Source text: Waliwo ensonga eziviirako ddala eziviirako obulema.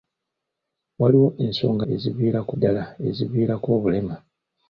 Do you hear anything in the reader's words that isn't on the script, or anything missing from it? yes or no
no